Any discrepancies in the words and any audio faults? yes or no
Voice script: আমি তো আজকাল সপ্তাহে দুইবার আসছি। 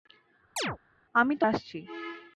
yes